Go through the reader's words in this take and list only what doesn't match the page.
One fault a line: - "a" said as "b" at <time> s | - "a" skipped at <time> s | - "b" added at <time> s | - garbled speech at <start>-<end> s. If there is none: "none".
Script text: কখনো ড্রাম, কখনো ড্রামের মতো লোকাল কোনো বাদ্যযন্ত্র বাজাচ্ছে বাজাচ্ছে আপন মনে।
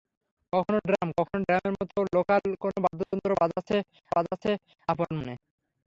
none